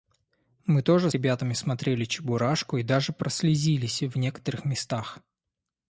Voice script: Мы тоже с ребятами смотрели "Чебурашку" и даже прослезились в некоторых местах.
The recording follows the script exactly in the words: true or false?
false